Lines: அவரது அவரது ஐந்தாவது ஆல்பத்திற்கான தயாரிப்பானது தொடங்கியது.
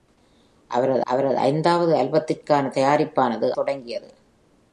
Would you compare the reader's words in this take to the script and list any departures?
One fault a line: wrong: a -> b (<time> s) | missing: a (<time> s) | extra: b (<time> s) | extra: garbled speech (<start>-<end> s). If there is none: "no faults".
no faults